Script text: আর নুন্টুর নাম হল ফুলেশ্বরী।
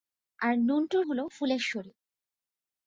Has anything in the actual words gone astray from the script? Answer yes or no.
yes